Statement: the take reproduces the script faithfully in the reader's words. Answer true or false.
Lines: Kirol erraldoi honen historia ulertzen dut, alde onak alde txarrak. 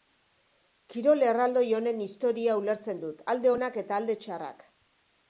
false